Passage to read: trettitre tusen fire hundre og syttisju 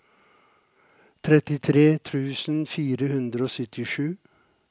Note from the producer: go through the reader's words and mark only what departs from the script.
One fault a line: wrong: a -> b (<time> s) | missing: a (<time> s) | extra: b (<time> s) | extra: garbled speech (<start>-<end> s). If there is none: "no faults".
no faults